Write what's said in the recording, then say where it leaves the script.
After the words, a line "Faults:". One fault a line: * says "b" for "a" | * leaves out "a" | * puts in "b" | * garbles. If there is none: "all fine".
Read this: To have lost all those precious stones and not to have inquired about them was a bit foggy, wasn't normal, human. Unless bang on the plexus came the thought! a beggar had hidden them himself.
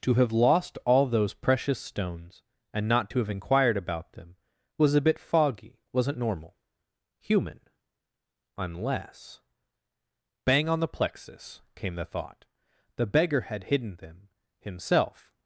To have lost all those precious stones and not to have inquired about them was a bit foggy, wasn't normal, human. Unless bang on the plexus came the thought! the beggar had hidden them himself.
Faults:
* says "the" for "a"